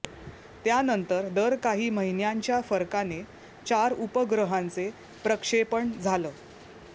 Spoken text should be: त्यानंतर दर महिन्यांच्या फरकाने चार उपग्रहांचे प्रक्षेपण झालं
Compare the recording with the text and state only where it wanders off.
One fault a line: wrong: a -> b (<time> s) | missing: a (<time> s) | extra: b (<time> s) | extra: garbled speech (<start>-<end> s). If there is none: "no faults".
extra: काही (1.6 s)